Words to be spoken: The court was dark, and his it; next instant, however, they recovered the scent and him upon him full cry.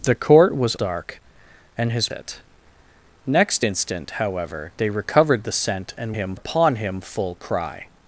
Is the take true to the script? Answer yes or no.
yes